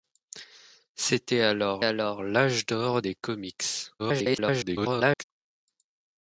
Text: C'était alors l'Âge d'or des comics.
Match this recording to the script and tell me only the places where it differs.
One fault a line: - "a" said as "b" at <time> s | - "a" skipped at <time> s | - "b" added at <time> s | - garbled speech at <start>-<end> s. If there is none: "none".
- "alors" added at 1.8 s
- garbled speech at 4.0-5.2 s